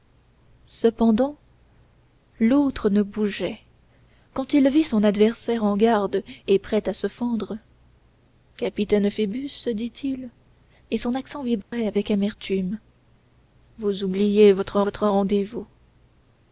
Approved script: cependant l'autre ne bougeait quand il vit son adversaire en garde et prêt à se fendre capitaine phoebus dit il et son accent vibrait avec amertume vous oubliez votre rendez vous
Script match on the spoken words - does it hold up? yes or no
no